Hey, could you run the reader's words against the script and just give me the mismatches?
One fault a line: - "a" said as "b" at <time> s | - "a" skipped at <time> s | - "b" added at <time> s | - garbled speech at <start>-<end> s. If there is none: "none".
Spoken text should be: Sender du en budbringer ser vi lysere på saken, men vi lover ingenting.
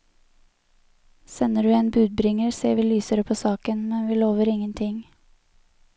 none